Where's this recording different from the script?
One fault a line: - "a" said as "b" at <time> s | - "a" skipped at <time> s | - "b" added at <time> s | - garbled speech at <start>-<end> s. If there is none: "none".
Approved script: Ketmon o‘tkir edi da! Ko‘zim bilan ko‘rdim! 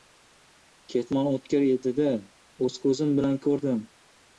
- "O‘z" added at 2.7 s